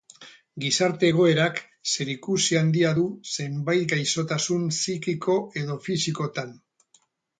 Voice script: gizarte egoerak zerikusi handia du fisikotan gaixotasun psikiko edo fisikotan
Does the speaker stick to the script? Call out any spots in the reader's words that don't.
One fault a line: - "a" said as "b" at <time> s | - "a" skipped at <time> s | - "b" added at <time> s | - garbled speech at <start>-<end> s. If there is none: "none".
- "fisikotan" said as "zenbait" at 3.3 s